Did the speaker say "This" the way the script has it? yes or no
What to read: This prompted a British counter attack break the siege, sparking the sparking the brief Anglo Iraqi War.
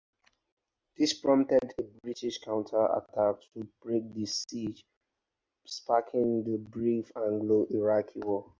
yes